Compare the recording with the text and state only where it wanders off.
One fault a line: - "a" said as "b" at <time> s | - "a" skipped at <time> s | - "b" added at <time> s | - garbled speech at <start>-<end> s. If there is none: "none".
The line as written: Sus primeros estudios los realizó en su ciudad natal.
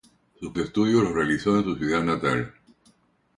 - "primeros" skipped at 0.6 s